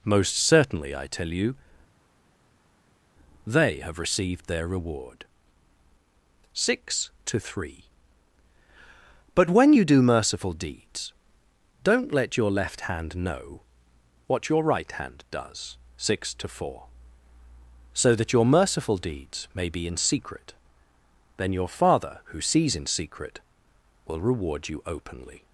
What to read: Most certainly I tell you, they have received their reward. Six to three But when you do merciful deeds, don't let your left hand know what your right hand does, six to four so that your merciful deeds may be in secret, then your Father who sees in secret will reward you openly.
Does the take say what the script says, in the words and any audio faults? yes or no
yes